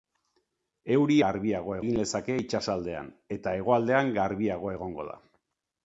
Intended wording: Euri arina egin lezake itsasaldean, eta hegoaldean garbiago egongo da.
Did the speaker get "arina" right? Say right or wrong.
wrong